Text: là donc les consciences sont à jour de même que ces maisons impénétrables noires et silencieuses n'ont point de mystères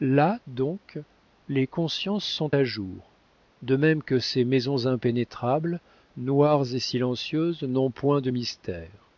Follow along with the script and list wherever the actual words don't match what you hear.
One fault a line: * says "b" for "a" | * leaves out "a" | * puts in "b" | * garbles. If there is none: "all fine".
all fine